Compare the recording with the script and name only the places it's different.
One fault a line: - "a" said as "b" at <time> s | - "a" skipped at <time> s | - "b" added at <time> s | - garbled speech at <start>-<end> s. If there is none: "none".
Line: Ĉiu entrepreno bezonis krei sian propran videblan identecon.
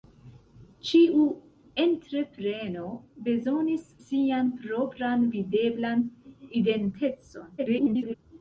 - "krei" skipped at 3.9 s
- garbled speech at 7.6-8.1 s